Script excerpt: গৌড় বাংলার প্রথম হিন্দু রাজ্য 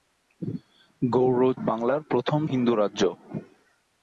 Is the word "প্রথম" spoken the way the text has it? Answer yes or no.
yes